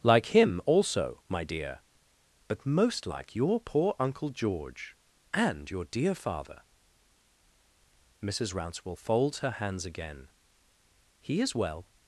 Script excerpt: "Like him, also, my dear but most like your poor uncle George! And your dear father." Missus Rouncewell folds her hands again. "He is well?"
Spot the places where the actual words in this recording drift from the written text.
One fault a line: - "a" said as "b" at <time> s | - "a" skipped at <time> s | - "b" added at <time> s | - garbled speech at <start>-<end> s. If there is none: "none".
none